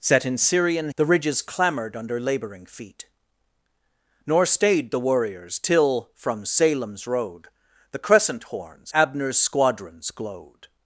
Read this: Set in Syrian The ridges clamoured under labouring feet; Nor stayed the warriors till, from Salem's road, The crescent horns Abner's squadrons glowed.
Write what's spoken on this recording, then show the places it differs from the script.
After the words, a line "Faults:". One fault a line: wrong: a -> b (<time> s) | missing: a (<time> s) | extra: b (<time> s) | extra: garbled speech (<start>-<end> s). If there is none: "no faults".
Set in Syrian The ridges clamoured under labouring feet; Nor stayed the warriors till, from Salem's road, The crescent horns Abner's squadrons glowed.
Faults:
no faults